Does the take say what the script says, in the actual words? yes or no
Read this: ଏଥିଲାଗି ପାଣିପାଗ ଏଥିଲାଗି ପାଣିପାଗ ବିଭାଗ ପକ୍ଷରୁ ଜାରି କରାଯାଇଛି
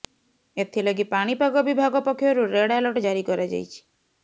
no